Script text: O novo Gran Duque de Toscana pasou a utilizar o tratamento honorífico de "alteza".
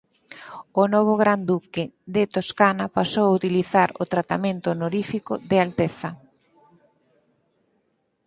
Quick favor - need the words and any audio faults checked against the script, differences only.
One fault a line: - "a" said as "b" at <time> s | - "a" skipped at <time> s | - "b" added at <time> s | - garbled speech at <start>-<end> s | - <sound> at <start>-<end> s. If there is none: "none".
none